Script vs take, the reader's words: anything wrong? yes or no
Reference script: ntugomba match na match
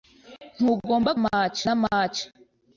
no